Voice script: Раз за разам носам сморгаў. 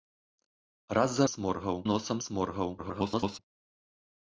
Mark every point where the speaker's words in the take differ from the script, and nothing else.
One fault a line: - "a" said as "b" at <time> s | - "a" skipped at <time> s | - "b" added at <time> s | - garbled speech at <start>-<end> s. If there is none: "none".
- "разам" said as "сморгаў" at 1.3 s
- garbled speech at 2.8-3.4 s